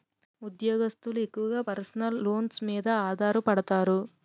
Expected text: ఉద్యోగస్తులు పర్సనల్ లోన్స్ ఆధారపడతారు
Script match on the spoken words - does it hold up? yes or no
no